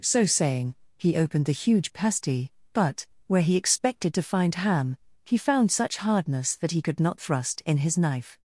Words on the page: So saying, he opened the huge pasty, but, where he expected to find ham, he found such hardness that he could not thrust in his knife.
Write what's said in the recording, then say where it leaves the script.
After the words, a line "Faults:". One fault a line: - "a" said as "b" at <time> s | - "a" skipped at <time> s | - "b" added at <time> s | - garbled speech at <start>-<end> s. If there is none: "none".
So saying, he opened the huge pasty, but, where he expected to find ham, he found such hardness that he could not thrust in his knife.
Faults:
none